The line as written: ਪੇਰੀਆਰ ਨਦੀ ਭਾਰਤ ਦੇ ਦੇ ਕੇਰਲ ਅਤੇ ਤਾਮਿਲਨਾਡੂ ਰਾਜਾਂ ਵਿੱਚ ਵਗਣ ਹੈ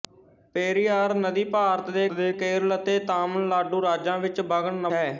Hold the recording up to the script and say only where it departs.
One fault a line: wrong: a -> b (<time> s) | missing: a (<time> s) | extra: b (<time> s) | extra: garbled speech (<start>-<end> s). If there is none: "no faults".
no faults